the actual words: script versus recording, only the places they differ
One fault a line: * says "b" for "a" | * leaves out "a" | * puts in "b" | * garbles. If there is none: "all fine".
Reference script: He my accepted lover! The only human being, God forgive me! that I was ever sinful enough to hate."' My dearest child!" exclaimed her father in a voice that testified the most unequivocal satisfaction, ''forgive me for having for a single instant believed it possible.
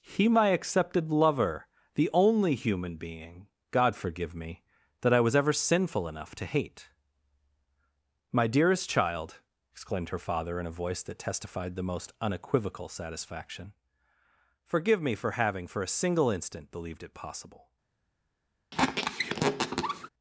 all fine